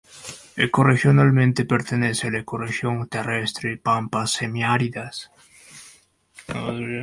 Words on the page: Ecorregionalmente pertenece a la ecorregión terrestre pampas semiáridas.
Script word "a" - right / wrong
right